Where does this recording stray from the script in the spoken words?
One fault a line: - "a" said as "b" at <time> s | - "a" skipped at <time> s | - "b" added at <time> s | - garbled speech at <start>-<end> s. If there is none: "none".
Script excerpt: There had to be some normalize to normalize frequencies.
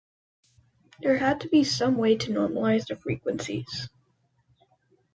- "normalize" said as "way" at 2.0 s
- "the" added at 2.9 s